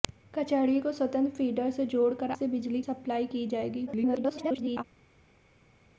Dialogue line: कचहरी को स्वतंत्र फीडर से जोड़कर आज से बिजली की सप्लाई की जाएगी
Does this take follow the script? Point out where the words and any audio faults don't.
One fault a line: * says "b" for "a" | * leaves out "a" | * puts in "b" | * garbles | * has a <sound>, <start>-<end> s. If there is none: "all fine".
* leaves out "आज"
* leaves out "की"
* garbles